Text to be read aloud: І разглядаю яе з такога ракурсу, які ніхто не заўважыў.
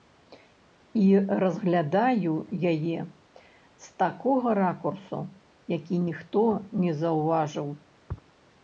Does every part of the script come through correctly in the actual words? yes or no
yes